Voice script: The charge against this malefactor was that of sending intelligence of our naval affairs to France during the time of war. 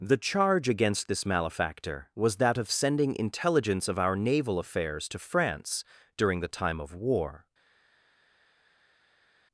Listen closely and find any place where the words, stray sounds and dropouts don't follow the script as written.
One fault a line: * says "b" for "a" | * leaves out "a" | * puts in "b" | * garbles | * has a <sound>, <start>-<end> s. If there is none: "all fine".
all fine